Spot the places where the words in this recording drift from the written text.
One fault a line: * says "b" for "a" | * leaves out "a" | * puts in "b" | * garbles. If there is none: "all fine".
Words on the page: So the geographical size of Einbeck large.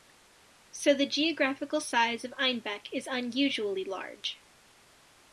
* puts in "is unusually"